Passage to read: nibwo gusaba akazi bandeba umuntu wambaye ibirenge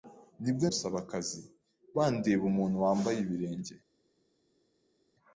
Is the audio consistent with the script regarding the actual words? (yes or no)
yes